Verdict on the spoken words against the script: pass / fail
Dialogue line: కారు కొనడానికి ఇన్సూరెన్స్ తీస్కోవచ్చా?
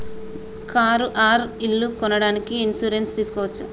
fail